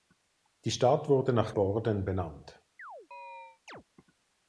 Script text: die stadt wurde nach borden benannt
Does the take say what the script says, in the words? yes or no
yes